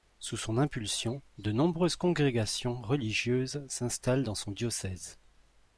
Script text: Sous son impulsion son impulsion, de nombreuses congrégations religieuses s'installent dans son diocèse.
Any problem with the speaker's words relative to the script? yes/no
yes